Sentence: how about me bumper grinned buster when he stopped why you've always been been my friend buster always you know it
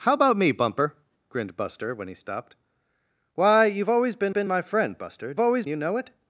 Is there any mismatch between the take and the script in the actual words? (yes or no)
no